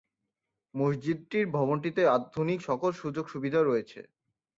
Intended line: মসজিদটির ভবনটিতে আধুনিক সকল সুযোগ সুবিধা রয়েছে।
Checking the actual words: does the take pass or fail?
pass